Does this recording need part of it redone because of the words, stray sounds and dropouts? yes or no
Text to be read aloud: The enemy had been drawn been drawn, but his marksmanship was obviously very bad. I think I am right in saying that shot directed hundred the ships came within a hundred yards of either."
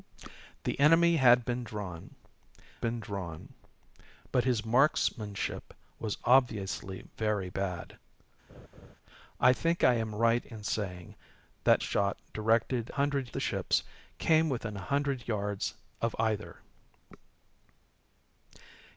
yes